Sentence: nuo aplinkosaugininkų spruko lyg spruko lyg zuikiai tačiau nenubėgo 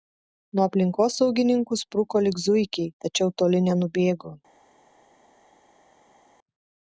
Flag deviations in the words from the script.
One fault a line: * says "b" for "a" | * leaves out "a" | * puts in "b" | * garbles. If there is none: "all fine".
* leaves out "spruko lyg"
* puts in "toli"